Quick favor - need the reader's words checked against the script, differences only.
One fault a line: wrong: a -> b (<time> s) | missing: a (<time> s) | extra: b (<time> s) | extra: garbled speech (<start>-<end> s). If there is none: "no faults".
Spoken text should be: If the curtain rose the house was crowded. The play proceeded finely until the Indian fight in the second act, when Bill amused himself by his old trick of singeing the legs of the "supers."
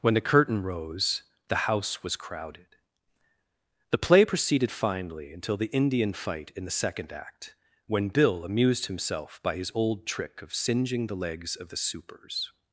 wrong: If -> When (0.0 s)